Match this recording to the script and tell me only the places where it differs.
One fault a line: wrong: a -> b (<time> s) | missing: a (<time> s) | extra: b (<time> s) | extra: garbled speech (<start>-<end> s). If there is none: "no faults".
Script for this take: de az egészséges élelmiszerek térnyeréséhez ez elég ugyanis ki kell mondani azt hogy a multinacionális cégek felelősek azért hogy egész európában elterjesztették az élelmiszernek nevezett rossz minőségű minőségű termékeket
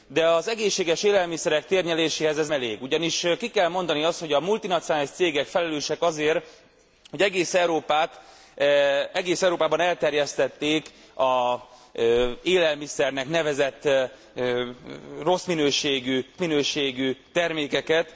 no faults